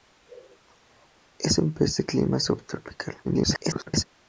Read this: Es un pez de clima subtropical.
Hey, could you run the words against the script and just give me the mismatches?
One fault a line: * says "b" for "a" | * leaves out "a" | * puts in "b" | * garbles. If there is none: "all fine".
* garbles